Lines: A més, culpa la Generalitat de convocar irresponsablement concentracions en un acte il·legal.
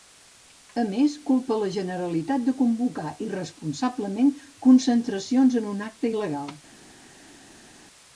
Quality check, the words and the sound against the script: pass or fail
pass